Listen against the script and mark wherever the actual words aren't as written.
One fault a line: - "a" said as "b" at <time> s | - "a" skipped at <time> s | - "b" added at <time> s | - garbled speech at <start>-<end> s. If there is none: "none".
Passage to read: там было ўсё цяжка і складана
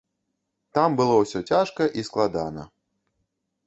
none